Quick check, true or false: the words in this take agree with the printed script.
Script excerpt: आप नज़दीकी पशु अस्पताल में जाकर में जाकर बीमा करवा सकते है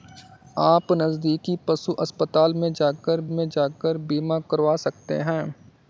true